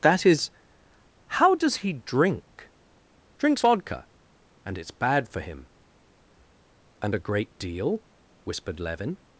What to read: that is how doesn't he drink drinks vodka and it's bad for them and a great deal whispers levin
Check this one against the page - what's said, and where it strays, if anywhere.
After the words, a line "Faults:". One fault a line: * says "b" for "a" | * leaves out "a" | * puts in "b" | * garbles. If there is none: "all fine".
that is how does he drink drinks vodka and it's bad for him and a great deal whispered levin
Faults:
* says "does" for "doesn't"
* says "him" for "them"
* says "whispered" for "whispers"